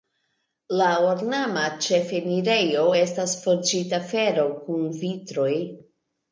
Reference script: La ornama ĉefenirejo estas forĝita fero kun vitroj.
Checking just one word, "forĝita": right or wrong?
right